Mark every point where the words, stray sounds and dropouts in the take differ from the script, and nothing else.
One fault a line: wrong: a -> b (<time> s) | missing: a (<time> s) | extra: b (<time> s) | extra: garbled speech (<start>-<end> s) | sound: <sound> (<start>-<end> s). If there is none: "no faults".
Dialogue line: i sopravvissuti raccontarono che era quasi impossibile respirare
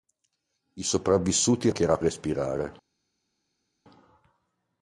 missing: raccontarono (1.7 s)
missing: quasi impossibile (2.0 s)